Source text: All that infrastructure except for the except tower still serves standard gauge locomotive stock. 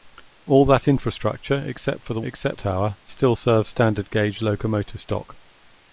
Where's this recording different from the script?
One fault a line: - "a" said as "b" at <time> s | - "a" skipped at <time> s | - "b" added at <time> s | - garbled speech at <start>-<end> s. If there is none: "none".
none